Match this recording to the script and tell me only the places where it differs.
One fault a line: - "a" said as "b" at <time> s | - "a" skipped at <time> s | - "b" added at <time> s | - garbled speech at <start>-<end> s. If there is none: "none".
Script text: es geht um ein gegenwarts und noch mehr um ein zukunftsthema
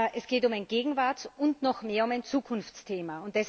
none